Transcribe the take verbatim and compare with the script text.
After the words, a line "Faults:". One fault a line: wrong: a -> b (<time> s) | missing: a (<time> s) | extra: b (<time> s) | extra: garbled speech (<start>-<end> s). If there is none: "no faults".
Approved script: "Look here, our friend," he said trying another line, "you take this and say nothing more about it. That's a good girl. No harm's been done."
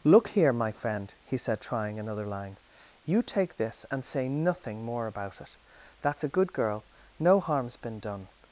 "Look here, my friend," he said trying another line, "you take this and say nothing more about it. That's a good girl. No harm's been done."
Faults:
wrong: our -> my (0.5 s)